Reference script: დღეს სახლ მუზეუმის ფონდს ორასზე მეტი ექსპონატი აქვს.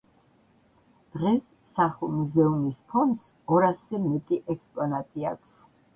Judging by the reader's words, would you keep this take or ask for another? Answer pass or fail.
pass